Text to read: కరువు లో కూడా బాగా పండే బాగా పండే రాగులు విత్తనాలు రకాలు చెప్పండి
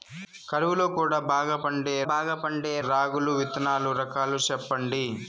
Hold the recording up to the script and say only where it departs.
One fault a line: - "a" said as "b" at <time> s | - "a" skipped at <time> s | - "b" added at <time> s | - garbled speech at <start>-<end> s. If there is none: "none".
none